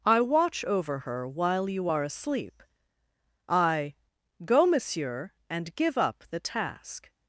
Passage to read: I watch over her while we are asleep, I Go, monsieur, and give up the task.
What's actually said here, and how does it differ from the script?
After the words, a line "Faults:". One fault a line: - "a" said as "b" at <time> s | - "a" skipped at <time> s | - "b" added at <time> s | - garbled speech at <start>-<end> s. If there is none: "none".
I watch over her while you are asleep, I Go, monsieur, and give up the task.
Faults:
- "we" said as "you" at 1.7 s